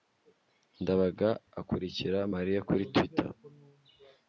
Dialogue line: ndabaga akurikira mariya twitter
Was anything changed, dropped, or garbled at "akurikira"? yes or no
no